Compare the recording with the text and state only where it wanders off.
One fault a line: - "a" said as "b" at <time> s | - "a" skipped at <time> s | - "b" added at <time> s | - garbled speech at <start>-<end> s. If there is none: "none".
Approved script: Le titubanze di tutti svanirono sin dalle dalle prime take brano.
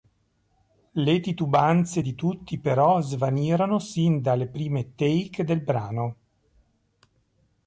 - "però" added at 2.6 s
- "dalle" skipped at 4.5 s
- "del" added at 5.4 s